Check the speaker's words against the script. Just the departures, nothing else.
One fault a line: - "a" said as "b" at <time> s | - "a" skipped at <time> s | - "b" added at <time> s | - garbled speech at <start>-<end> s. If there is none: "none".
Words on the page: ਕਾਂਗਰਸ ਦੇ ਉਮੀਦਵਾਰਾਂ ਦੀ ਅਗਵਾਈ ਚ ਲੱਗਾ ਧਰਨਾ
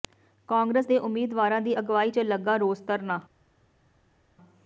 - "ਰੋਸ" added at 2.6 s